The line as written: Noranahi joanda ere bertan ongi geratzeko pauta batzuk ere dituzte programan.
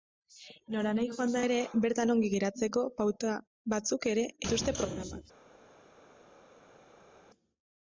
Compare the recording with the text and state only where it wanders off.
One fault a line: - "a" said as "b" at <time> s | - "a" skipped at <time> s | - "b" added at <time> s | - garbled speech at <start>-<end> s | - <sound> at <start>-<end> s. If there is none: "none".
none